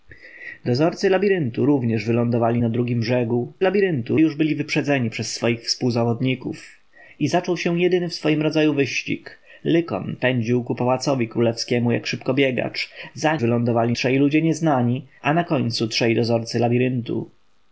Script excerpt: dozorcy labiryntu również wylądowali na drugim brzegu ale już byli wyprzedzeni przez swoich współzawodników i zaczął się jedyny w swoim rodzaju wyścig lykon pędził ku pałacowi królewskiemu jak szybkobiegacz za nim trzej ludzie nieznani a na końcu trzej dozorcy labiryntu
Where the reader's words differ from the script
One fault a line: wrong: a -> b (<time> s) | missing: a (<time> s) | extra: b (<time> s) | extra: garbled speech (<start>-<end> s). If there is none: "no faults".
wrong: ale -> labiryntu (3.6 s)
wrong: nim -> wylądowali (13.4 s)